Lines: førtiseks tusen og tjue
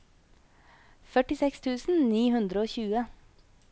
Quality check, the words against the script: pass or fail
fail